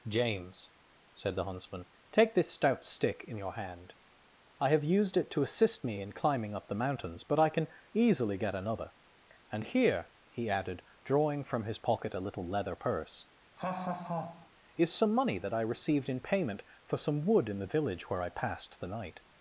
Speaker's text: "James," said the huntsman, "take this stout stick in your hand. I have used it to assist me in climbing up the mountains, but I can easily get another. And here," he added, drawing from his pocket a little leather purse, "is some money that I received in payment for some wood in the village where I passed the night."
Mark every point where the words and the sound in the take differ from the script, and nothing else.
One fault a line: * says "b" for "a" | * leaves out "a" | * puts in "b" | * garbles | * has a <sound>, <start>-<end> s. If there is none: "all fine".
* has a laugh, 13.6-14.5 s